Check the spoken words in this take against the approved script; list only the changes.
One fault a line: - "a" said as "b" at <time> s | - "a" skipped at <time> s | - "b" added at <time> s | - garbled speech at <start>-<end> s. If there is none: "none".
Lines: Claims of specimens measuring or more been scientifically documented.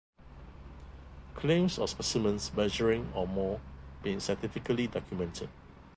none